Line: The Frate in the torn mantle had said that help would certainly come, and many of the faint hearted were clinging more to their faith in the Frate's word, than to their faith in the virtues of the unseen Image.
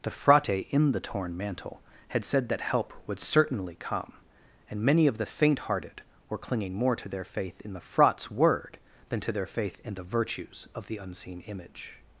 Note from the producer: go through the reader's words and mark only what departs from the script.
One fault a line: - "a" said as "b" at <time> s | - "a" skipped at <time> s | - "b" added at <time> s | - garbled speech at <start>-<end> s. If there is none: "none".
none